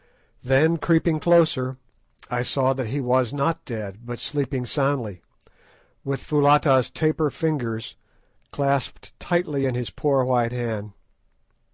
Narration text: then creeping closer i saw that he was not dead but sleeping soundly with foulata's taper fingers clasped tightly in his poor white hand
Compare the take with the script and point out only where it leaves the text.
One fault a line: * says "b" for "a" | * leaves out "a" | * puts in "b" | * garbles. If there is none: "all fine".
all fine